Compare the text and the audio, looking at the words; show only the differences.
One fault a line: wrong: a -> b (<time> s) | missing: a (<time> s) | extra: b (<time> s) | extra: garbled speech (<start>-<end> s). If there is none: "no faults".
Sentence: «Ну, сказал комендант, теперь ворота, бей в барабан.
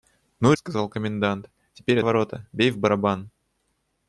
no faults